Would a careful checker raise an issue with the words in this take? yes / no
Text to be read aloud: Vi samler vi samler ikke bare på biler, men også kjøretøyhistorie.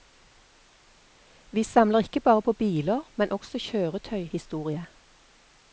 yes